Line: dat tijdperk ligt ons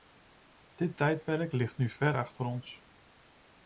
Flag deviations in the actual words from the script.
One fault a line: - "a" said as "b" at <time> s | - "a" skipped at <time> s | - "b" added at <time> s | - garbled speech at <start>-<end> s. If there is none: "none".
- "dat" said as "dit" at 0.8 s
- "nu ver achter" added at 1.8 s